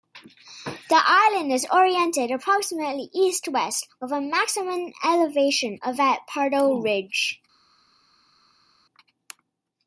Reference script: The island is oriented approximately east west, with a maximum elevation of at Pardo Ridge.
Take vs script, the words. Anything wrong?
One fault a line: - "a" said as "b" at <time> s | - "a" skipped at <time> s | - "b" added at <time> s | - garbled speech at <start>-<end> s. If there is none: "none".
none